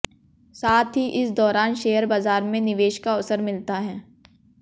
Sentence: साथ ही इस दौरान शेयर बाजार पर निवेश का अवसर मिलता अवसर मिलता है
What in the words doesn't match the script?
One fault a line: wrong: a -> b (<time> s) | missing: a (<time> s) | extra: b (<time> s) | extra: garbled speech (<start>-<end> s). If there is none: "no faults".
wrong: पर -> में (2.4 s)
missing: अवसर मिलता (3.8 s)